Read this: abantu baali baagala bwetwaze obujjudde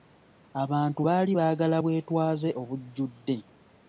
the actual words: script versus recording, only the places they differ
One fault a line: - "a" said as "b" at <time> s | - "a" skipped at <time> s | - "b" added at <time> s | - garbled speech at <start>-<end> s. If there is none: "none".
none